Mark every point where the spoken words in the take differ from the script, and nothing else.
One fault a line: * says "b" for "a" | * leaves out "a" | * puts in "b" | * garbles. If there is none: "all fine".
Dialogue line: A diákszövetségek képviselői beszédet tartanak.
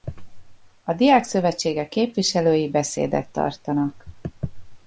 all fine